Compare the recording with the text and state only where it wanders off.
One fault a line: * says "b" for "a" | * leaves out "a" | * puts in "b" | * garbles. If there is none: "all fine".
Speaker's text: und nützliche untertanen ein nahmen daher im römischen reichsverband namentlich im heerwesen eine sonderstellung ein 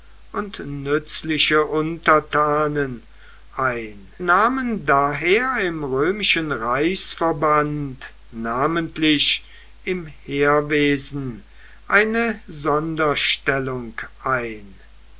all fine